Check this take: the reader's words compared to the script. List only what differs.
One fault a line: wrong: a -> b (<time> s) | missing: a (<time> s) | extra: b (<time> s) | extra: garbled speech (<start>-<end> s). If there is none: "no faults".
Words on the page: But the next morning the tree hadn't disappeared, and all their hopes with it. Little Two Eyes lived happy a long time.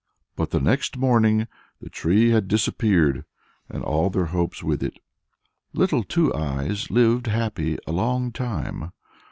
wrong: hadn't -> had (2.3 s)